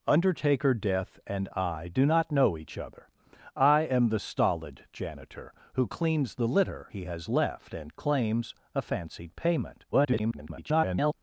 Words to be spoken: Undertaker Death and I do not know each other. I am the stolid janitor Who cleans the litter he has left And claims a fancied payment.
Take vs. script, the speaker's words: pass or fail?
fail